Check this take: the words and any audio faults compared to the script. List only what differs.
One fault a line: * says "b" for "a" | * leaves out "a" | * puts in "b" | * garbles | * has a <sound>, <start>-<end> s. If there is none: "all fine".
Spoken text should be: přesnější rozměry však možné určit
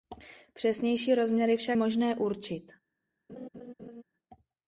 * has a laugh, 3.3-4.0 s